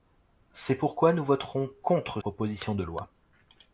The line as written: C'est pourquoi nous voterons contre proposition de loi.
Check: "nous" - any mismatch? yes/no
no